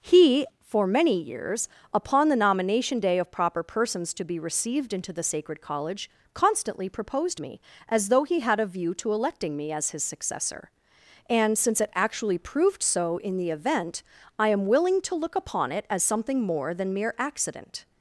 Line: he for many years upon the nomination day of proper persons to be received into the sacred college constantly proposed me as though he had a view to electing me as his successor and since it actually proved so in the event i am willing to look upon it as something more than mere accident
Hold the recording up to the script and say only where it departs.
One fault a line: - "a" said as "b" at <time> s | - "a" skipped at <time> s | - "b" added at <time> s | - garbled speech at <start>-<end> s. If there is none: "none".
none